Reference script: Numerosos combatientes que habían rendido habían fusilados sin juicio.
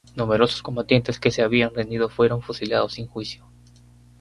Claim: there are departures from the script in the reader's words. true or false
true